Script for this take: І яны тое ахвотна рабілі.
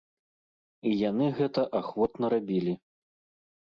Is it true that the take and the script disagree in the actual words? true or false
true